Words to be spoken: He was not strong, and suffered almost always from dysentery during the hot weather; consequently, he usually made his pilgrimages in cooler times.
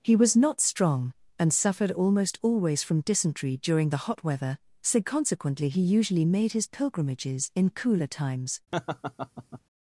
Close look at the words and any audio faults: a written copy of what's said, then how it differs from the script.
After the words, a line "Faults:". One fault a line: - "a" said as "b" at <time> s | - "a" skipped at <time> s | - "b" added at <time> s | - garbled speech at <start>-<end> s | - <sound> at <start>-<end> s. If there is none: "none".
He was not strong, and suffered almost always from dysentery during the hot weather; so consequently, he usually made his pilgrimages in cooler times.
Faults:
- "so" added at 4.8 s
- laugh at 8.7-9.6 s